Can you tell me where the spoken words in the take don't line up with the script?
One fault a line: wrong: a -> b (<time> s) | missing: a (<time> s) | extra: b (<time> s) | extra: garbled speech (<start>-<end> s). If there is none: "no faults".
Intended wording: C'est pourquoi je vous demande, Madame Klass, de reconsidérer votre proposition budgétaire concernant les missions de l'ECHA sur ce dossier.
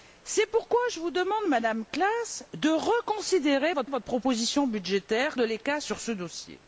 extra: votre (3.9 s)
missing: concernant les missions (5.4 s)